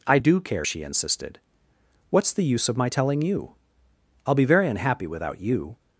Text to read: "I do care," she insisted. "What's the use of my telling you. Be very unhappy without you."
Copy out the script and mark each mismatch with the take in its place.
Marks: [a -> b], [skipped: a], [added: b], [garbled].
"I do care," she insisted. "What's the use of my telling you. [added: I'll] Be very unhappy without you."